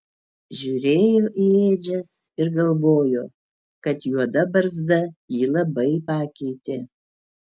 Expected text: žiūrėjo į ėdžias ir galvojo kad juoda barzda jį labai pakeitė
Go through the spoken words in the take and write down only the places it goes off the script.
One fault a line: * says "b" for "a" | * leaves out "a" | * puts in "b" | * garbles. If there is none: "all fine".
all fine